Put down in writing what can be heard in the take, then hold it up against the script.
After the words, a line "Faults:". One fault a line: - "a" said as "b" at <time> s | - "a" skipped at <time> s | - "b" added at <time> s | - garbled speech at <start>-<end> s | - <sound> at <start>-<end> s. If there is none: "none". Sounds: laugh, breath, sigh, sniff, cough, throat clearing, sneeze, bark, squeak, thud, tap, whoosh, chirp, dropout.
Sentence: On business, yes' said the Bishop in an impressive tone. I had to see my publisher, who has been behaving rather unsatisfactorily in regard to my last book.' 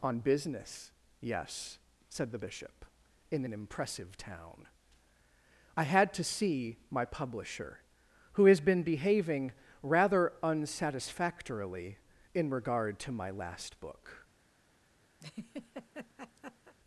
On business, yes' said the Bishop in an impressive town. I had to see my publisher, who has been behaving rather unsatisfactorily in regard to my last book.'
Faults:
- "tone" said as "town" at 4.2 s
- laugh at 15.2-16.7 s